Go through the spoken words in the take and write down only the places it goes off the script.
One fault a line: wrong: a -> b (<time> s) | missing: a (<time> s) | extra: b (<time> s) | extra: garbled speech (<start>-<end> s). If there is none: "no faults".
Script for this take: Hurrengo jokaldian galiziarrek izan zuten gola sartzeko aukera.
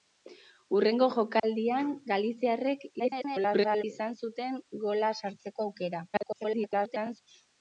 extra: garbled speech (3.0-3.8 s)
extra: garbled speech (6.1-7.2 s)